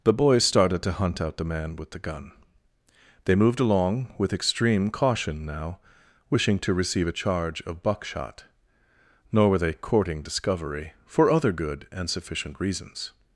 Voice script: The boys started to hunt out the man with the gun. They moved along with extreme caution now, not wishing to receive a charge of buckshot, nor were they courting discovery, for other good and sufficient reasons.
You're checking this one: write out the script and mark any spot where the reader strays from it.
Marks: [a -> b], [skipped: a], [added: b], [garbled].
The boys started to hunt out the man with the gun. They moved along with extreme caution now, [skipped: not] wishing to receive a charge of buckshot, nor were they courting discovery, for other good and sufficient reasons.